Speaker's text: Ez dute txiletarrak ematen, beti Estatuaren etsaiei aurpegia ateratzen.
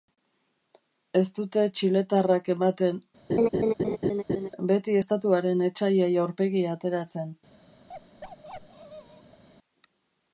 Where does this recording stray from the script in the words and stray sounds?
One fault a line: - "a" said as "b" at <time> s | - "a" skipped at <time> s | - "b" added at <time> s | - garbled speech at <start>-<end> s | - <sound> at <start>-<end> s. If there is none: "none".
- laugh at 3.3-4.5 s
- bark at 7.9-9.4 s